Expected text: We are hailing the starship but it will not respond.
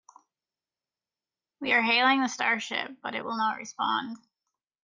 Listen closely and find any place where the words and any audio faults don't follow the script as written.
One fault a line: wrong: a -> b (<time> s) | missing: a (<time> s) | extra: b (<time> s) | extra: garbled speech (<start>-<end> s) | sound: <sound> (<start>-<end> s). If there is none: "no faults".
no faults